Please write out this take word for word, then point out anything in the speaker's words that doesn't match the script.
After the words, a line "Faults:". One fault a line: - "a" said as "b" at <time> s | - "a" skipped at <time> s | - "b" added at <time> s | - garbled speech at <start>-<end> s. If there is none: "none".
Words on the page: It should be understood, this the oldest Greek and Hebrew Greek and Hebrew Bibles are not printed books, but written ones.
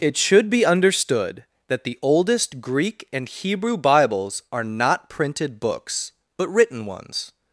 It should be understood, that the oldest Greek and Hebrew Bibles are not printed books, but written ones.
Faults:
- "this" said as "that" at 1.7 s
- "Greek and Hebrew" skipped at 3.8 s